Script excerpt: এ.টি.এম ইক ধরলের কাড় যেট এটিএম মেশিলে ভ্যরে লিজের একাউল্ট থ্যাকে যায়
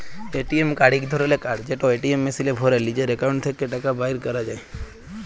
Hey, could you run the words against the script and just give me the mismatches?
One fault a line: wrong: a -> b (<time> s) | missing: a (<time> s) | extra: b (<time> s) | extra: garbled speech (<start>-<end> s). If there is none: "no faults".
extra: কাড় (0.8 s)
extra: টাকা বাইর ক্যরা (3.7 s)